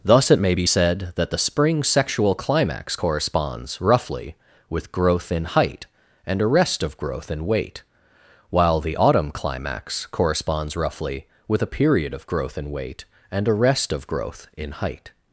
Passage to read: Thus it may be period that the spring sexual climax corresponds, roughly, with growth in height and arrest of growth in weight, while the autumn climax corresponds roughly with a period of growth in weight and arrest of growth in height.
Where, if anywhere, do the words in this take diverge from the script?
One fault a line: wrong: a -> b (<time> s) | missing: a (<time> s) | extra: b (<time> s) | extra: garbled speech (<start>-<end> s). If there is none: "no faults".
wrong: period -> said (0.6 s)